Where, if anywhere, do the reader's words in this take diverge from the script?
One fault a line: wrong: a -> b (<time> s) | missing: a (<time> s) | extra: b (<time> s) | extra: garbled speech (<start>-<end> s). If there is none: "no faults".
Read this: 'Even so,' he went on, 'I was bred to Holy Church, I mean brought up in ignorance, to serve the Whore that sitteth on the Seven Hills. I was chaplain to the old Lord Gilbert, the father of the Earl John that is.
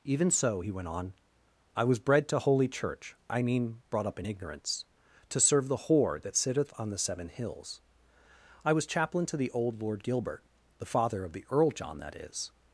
no faults